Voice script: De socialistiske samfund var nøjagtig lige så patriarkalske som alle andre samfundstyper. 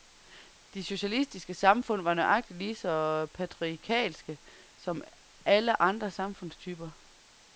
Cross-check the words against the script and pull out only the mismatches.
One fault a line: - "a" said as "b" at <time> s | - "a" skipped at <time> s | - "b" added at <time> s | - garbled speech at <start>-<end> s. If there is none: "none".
none